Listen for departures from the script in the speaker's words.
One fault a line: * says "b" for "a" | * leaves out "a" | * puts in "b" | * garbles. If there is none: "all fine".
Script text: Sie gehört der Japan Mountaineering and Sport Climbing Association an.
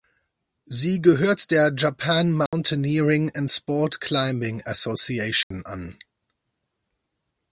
all fine